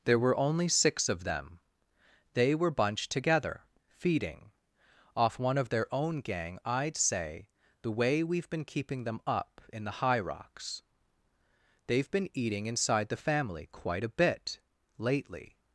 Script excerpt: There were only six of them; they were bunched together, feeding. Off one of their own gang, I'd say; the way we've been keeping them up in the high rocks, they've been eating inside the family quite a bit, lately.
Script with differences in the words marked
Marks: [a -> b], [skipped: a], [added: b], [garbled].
There were only six of them; they were bunched together, feeding. Off one of their own gang, I'd say; the way we've been keeping them up in the high rocks, they've been eating inside the family quite a bit, lately.